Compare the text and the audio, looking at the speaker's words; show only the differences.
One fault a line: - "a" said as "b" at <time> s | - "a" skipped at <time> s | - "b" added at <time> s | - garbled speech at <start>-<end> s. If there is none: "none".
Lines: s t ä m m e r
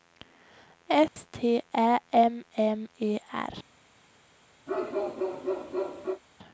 none